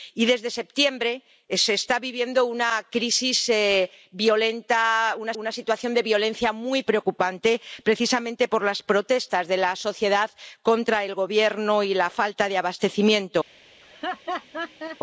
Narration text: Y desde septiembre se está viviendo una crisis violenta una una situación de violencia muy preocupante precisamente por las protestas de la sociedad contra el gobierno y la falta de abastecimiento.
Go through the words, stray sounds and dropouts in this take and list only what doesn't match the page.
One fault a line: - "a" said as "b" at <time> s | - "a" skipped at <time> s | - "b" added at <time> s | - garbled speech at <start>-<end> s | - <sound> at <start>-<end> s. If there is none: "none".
- laugh at 13.8-15.0 s